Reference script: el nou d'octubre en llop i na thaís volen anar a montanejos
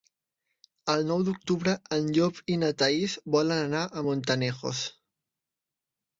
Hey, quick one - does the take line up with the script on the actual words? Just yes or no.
yes